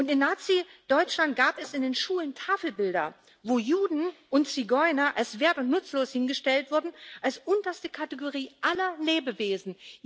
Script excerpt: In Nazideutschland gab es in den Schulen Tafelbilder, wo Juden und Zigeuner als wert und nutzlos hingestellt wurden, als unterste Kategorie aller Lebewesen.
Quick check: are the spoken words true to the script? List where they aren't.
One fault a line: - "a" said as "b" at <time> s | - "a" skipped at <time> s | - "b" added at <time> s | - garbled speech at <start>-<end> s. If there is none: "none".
none